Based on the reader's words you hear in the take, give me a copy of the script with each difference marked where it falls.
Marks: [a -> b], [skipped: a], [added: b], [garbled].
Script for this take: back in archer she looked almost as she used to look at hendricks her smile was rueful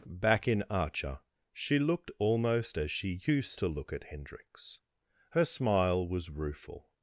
back in archer she looked almost as she used to look at hendricks her smile was rueful